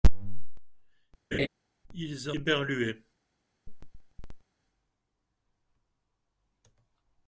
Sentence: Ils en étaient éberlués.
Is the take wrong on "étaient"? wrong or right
wrong